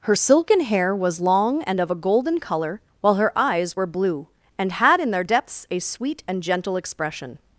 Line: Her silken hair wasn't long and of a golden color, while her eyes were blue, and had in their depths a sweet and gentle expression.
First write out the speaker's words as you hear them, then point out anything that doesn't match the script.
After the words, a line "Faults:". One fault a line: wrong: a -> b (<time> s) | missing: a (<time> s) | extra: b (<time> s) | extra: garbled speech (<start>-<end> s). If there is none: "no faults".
Her silken hair was long and of a golden color, while her eyes were blue, and had in their depths a sweet and gentle expression.
Faults:
wrong: wasn't -> was (1.0 s)